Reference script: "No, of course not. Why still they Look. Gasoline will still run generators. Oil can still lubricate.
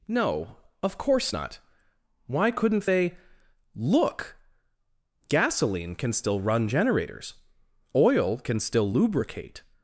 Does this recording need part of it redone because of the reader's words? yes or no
yes